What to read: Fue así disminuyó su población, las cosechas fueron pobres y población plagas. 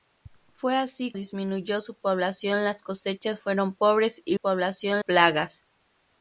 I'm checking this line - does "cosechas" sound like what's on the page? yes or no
yes